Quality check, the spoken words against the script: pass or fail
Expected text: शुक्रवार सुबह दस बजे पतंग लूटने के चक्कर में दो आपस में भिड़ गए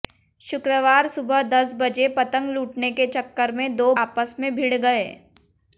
pass